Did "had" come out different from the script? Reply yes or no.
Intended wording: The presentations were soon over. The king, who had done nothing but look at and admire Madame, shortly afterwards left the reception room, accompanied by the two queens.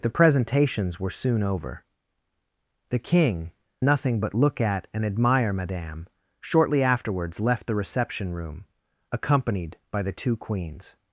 yes